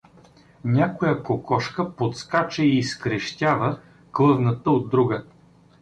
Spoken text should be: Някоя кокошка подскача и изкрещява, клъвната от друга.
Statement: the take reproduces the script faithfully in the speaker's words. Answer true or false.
true